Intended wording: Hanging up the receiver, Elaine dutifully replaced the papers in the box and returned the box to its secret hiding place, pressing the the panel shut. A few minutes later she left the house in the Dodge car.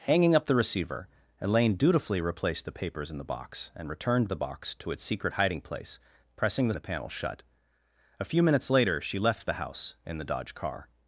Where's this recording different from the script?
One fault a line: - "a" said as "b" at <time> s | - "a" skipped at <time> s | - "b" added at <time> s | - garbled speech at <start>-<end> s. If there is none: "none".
none